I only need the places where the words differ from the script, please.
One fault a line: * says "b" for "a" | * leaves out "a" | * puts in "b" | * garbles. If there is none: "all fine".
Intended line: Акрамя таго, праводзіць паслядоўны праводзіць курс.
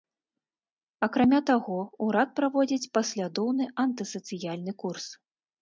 * puts in "урад"
* says "антысацыяльны" for "праводзіць"